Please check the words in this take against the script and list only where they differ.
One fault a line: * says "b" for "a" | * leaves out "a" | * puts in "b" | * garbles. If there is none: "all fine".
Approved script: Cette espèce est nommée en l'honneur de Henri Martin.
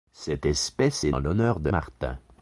* leaves out "nommée"
* leaves out "Henri"